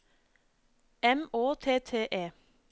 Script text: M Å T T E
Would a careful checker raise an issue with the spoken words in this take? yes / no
no